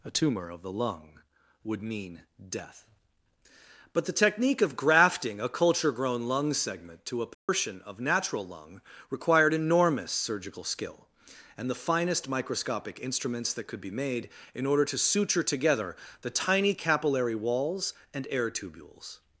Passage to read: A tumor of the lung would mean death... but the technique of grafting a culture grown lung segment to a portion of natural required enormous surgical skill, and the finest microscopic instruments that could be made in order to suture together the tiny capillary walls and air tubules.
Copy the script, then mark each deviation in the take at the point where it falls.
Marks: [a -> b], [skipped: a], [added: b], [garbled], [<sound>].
A tumor of the lung would mean death... but the technique of grafting a culture grown lung segment to a portion [dropout] of natural [added: lung] required enormous surgical skill, and the finest microscopic instruments that could be made in order to suture together the tiny capillary walls and air tubules.